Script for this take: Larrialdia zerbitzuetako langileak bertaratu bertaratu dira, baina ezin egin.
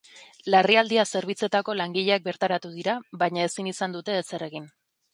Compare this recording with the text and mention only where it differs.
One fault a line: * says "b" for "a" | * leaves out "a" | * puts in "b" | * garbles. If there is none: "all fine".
* leaves out "bertaratu"
* puts in "izan dute ezer"